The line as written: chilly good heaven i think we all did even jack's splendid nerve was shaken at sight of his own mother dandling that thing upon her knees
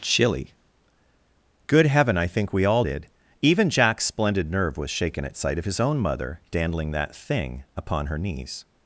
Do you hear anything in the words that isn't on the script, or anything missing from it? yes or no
no